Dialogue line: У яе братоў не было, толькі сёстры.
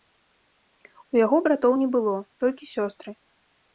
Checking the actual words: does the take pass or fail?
fail